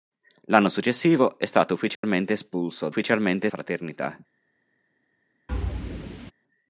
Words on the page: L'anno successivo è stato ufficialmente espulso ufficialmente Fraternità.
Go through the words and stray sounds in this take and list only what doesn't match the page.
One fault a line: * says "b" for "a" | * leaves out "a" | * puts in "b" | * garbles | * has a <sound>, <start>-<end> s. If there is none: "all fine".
* has a dropout, 1.9-2.0 s
* has a thud, 5.5-6.3 s